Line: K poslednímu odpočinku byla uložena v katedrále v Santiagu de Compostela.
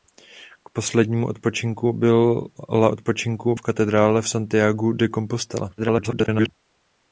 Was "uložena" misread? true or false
true